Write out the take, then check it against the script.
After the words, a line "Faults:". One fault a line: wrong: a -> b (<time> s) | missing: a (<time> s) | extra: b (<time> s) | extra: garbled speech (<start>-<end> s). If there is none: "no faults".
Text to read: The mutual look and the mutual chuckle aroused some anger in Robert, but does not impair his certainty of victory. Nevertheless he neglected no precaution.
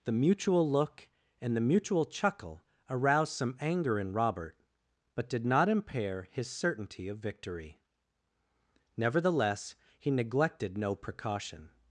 The mutual look and the mutual chuckle aroused some anger in Robert, but did not impair his certainty of victory. Nevertheless he neglected no precaution.
Faults:
wrong: does -> did (5.3 s)